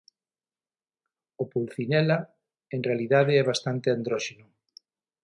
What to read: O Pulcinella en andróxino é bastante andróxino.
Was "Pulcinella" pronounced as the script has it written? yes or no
yes